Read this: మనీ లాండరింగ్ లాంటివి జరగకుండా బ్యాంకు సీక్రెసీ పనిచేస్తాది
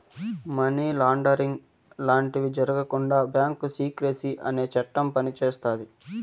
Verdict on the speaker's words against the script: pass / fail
fail